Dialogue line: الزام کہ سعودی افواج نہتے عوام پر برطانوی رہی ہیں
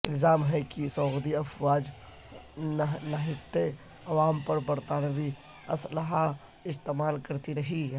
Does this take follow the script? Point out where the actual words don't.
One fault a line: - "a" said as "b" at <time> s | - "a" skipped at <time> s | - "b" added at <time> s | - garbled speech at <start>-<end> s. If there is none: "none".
- "ہے" added at 0.5 s
- "اسلحہ استعمال کرتی" added at 5.7 s